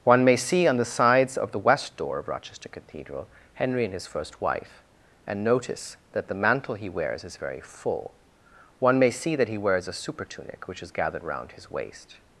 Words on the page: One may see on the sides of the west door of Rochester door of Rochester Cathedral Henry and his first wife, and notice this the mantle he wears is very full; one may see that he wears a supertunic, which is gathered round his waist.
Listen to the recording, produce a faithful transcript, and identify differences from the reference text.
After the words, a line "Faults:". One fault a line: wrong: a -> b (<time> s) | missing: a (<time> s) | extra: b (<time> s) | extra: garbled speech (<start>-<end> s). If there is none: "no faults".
One may see on the sides of the west door of Rochester Cathedral Henry and his first wife, and notice that the mantle he wears is very full; one may see that he wears a supertunic, which is gathered round his waist.
Faults:
missing: door of Rochester (2.7 s)
wrong: this -> that (6.1 s)